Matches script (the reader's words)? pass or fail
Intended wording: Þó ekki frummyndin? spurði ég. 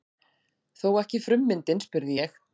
pass